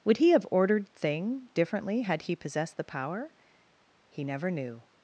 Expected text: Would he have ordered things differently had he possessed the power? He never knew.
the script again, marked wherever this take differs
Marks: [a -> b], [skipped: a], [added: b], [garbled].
Would he have ordered [things -> thing] differently had he possessed the power? He never knew.